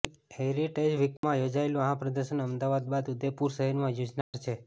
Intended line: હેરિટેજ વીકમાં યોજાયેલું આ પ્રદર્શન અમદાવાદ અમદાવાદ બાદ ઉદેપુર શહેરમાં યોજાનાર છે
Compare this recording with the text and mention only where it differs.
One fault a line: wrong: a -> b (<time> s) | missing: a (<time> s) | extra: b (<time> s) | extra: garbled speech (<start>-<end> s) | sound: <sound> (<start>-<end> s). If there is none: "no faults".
sound: dropout (1.2-1.2 s)
missing: અમદાવાદ (2.9 s)
sound: dropout (4.2-4.3 s)